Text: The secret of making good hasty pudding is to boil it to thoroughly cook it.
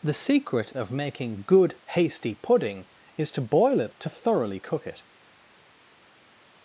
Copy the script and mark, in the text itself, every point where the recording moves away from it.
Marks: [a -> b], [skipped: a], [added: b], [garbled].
The secret of making good hasty pudding is to boil it to thoroughly cook it.